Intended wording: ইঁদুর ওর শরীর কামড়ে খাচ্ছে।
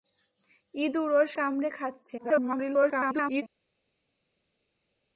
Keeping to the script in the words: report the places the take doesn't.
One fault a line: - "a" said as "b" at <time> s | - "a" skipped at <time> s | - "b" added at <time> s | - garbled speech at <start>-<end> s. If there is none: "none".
- "শরীর" skipped at 1.3 s
- garbled speech at 2.2-3.4 s